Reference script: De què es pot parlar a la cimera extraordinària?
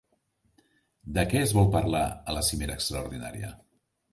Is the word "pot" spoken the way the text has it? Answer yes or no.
no